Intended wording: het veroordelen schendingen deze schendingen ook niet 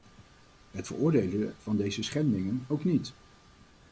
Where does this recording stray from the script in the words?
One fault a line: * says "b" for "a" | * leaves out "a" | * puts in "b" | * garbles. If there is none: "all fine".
* says "van" for "schendingen"